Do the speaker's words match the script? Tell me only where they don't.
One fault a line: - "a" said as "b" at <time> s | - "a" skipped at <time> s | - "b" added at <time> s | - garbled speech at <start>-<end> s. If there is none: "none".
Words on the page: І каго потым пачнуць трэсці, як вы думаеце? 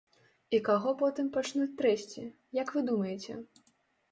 none